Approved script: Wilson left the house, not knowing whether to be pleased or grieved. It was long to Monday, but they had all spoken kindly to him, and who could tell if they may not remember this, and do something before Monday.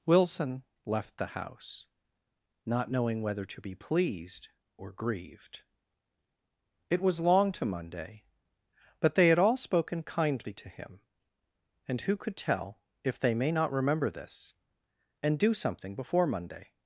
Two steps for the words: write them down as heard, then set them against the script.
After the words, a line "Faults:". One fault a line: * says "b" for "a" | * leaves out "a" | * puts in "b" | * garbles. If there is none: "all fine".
Wilson left the house, not knowing whether to be pleased or grieved. It was long to Monday, but they had all spoken kindly to him, and who could tell if they may not remember this, and do something before Monday.
Faults:
all fine